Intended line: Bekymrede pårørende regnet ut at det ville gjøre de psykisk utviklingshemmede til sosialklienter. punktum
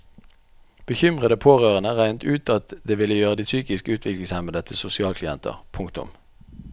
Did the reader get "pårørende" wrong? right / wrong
right